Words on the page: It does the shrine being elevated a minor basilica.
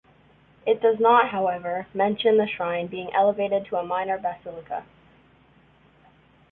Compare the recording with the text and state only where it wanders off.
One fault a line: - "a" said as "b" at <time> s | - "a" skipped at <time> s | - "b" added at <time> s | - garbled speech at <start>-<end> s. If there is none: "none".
- "not however mention" added at 1.0 s
- "to" added at 3.6 s